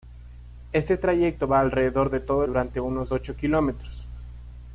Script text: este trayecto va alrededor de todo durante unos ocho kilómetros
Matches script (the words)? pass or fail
pass